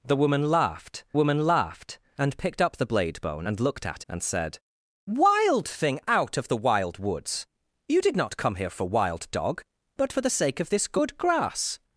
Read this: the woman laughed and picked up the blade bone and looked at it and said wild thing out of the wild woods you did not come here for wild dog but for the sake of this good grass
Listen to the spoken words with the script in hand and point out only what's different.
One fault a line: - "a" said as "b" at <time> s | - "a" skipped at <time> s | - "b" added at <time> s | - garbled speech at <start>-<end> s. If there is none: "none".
- "woman laughed" added at 1.1 s
- "it" skipped at 4.0 s